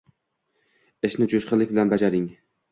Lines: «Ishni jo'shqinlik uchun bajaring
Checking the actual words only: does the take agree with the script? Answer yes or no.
no